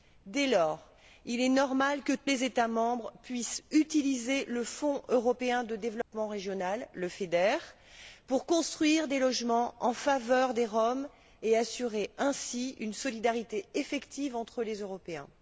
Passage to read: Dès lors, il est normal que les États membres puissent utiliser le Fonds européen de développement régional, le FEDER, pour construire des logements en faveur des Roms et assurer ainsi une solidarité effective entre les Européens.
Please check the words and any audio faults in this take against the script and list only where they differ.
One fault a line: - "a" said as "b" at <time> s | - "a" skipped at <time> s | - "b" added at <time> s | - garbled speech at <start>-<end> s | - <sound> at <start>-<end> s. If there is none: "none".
- dropout at 6.0-6.1 s